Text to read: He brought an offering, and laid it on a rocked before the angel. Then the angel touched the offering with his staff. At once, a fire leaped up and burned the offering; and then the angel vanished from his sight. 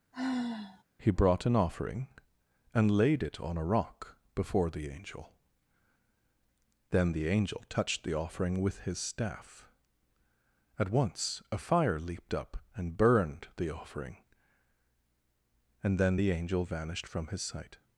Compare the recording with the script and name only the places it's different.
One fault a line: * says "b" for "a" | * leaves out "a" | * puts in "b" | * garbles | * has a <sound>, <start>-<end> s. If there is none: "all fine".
* has a sigh, 0.1-0.8 s
* says "rock" for "rocked"